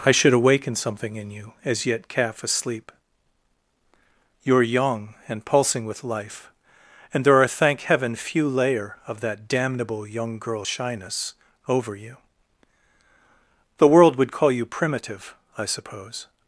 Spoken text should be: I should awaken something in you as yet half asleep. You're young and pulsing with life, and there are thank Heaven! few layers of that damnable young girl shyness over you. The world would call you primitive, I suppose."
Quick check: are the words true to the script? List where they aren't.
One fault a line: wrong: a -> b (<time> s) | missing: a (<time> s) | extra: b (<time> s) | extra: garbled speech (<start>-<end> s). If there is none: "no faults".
wrong: half -> calf (2.1 s)
wrong: layers -> layer (8.5 s)